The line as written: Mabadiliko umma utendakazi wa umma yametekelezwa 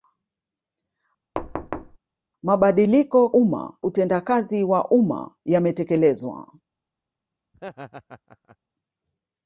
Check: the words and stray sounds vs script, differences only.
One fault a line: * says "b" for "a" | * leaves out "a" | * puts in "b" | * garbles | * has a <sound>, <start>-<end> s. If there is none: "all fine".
* has a thud, 1.4-2.0 s
* has a laugh, 7.5-8.6 s